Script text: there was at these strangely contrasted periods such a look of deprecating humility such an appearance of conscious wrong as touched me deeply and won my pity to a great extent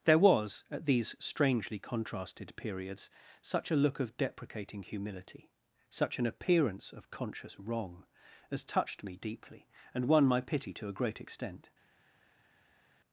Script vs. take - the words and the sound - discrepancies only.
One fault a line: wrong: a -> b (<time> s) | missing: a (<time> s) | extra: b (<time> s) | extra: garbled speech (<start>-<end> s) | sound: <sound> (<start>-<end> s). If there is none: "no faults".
no faults